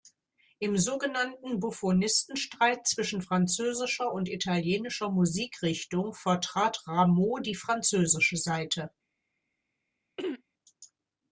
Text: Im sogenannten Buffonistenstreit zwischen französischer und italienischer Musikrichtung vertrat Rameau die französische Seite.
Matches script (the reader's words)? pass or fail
pass